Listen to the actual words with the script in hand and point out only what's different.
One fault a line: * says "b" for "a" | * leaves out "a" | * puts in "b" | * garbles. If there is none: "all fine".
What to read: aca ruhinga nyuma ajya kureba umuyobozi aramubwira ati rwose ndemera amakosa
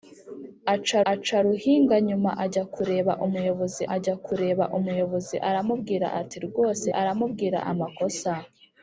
* puts in "aca"
* puts in "ajya kureba umuyobozi"
* says "aramubwira" for "ndemera"